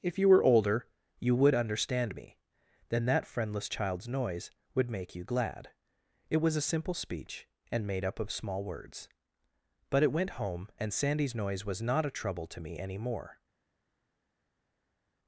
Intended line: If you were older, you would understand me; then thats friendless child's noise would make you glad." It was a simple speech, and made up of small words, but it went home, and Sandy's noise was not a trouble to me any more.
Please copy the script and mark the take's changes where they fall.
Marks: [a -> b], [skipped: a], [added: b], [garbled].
If you were older, you would understand me; then [thats -> that] friendless child's noise would make you glad." It was a simple speech, and made up of small words, but it went home, and Sandy's noise was not a trouble to me any more.